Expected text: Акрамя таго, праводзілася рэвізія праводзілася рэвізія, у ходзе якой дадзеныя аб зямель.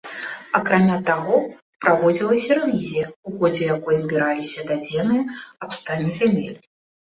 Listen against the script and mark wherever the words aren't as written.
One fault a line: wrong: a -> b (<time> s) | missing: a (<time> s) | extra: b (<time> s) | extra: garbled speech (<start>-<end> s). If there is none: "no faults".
missing: праводзілася рэвізія (3.0 s)
extra: збіраліся (4.0 s)
extra: стане (5.8 s)